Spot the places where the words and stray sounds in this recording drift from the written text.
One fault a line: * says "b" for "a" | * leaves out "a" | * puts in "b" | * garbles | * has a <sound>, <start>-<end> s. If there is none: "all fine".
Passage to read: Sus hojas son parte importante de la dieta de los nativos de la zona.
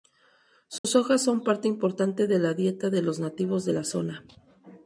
* has a dropout, 0.8-0.8 s